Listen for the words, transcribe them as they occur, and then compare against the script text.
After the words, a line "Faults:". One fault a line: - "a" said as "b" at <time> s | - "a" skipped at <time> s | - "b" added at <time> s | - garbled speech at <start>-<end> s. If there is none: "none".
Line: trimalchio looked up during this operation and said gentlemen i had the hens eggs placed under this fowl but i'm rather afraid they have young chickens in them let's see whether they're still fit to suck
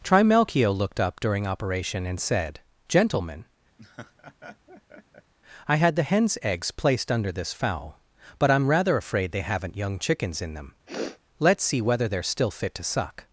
trimalchio looked up during operation and said gentlemen i had the hens eggs placed under this fowl but i'm rather afraid they haven't young chickens in them let's see whether they're still fit to suck
Faults:
- "this" skipped at 1.5 s
- "have" said as "haven't" at 9.4 s